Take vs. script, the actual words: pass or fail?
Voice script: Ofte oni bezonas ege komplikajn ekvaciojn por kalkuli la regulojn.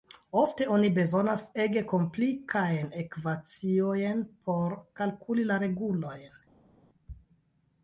pass